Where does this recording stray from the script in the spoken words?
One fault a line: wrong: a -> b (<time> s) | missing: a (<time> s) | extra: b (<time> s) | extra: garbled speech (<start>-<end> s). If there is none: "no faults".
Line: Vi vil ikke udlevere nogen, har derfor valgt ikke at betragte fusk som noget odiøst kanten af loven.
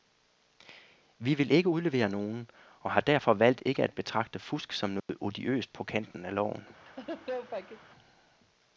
extra: og (2.8 s)
extra: på (5.7 s)